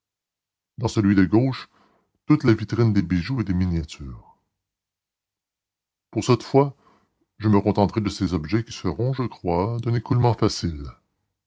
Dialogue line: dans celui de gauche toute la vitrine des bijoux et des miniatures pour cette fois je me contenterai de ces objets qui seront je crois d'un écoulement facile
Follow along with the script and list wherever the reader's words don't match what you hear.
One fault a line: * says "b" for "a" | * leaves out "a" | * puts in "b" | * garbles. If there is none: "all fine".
all fine